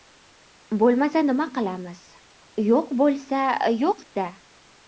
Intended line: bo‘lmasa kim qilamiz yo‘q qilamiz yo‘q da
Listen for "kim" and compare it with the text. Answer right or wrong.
wrong